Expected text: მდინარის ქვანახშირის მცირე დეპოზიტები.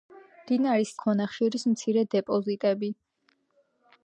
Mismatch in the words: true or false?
false